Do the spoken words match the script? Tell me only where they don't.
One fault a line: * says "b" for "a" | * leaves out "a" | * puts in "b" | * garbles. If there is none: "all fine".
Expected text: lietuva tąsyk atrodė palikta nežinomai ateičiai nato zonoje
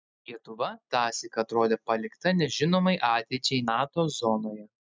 all fine